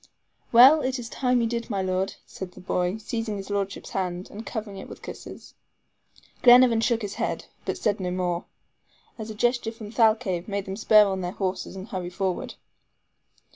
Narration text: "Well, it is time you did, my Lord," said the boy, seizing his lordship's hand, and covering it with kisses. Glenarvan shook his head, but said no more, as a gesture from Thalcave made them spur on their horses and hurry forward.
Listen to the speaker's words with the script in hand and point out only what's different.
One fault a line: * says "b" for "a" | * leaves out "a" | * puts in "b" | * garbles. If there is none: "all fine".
all fine